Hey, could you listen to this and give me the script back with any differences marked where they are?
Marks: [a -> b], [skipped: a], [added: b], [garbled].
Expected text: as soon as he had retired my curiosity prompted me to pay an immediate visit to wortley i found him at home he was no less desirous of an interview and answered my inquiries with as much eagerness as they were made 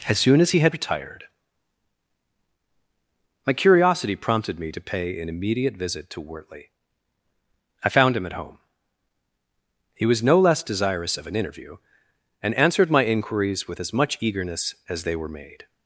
as soon as he had retired my curiosity prompted me to pay an immediate visit to wortley i found him at home he was no less desirous of an interview and answered my inquiries with as much eagerness as they were made